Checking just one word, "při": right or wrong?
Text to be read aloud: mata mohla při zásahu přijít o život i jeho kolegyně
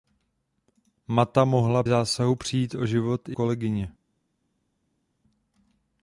wrong